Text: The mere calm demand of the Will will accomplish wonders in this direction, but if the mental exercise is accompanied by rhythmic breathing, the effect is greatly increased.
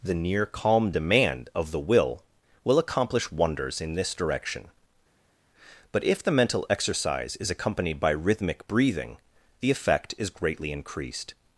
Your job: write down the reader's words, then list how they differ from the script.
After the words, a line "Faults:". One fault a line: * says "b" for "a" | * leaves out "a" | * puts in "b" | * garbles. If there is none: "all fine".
The near calm demand of the Will will accomplish wonders in this direction, but if the mental exercise is accompanied by rhythmic breathing, the effect is greatly increased.
Faults:
* says "near" for "mere"